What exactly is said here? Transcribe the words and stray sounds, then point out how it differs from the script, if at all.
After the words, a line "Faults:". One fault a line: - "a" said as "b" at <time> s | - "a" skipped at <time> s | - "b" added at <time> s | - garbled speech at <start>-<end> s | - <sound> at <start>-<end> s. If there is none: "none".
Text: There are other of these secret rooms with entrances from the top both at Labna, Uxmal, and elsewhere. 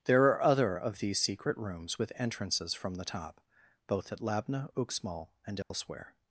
There are other of these secret rooms with entrances from the top both at Labna, Uxmal, and elsewhere.
Faults:
- dropout at 5.6-5.7 s